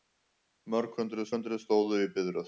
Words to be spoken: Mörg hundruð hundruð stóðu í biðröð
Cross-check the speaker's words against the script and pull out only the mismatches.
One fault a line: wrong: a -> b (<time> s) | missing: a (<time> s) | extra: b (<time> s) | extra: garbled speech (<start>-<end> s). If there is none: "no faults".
no faults